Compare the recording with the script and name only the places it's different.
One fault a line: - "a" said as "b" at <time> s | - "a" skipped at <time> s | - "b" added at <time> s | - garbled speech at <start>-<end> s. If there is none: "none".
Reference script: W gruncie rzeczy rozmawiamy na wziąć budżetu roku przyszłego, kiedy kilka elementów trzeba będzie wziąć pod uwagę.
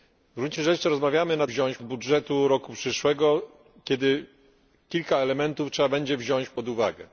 none